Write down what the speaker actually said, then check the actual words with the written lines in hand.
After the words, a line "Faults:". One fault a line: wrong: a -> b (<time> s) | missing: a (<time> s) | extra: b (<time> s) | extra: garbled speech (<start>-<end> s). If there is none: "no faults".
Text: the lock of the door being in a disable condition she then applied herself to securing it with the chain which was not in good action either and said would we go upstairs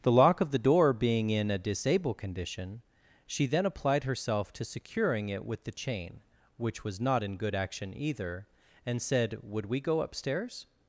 the lock of the door being in a disable condition she then applied herself to securing it with the chain which was not in good action either and said would we go upstairs
Faults:
no faults